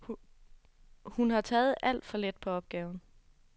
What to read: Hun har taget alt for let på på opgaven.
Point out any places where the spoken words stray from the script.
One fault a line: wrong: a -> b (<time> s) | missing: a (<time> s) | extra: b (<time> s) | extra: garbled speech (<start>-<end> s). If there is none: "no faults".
missing: på (2.5 s)